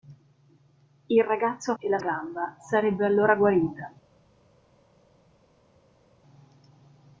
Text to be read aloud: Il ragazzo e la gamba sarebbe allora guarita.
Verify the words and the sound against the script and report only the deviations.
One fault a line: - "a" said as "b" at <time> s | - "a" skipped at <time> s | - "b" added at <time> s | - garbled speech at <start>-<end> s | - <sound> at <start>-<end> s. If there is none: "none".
none